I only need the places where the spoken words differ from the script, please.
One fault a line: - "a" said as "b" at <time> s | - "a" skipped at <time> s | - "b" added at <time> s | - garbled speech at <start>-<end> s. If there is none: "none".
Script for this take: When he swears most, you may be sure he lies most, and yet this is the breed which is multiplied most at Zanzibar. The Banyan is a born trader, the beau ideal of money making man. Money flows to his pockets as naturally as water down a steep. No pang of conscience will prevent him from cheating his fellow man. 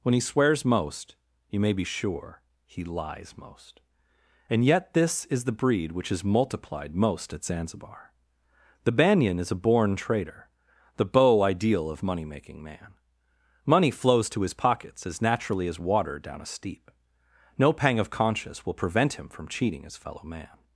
none